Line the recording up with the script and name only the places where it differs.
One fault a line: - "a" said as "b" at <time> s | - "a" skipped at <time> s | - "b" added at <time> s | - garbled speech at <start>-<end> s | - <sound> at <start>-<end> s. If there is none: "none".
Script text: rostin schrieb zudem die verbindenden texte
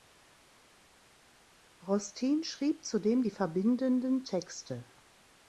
none